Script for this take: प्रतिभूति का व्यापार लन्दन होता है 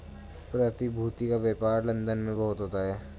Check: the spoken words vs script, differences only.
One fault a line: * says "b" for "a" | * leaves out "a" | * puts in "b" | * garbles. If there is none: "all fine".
* puts in "में बहुत"